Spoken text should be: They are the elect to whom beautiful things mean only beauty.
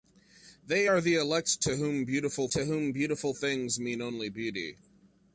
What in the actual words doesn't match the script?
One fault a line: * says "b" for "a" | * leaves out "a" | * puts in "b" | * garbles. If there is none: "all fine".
* puts in "to whom beautiful"